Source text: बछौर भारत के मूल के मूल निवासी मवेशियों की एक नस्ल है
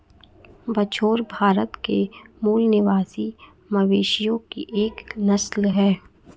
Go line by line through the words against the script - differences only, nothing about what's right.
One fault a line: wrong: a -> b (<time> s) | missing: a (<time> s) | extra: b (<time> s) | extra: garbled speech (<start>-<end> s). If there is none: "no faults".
missing: के मूल (2.6 s)